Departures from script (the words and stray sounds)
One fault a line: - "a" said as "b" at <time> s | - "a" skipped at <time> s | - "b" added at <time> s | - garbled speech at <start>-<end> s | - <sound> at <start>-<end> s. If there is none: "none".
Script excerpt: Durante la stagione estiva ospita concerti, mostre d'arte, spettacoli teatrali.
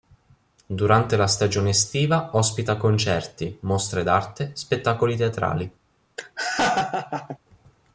- laugh at 6.2-7.4 s